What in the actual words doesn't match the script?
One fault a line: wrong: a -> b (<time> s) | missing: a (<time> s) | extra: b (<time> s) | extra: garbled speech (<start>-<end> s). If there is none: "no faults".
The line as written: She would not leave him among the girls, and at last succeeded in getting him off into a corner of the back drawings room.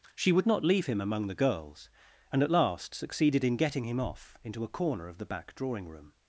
wrong: drawings -> drawing (5.5 s)